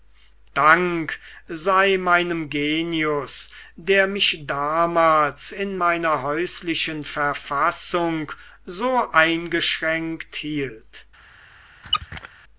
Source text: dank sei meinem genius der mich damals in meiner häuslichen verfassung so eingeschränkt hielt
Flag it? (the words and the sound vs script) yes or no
yes